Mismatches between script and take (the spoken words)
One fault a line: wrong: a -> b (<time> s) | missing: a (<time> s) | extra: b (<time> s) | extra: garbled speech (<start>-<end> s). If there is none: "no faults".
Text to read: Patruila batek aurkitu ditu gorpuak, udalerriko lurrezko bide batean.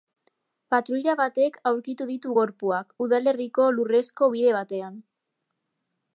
no faults